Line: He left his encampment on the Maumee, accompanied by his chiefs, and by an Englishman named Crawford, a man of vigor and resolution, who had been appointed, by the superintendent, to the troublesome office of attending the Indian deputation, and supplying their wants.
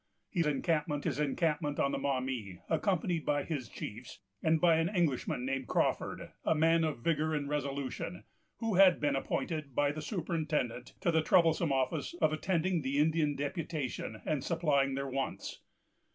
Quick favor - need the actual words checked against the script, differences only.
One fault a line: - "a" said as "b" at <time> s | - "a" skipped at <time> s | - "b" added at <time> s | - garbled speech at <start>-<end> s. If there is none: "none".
- "left" said as "encampment" at 0.4 s